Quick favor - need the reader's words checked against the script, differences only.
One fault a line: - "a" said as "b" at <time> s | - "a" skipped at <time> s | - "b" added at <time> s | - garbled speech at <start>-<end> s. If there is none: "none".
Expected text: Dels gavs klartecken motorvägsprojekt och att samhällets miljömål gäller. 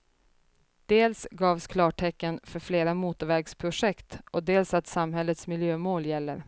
- "för flera" added at 2.4 s
- "dels" added at 4.4 s